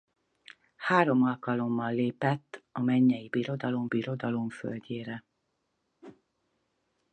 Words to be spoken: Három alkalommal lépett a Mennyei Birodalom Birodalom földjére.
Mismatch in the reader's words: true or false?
false